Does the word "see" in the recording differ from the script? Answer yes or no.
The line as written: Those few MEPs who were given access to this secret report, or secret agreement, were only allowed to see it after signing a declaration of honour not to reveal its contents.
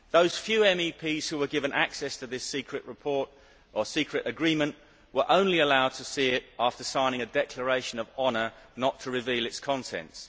no